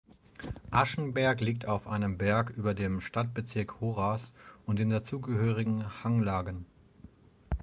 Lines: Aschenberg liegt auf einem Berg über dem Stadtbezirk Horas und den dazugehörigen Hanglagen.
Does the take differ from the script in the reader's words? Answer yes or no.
no